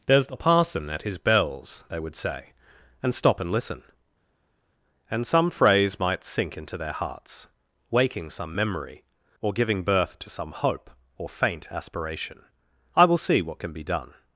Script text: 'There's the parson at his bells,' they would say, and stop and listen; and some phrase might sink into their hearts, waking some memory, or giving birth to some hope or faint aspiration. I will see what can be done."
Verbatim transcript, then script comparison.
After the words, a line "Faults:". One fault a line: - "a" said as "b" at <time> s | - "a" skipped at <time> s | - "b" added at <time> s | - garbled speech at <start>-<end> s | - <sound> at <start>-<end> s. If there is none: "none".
'There's the parson at his bells,' they would say, and stop and listen; and some phrase might sink into their hearts, waking some memory, or giving birth to some hope or faint aspiration. I will see what can be done."
Faults:
none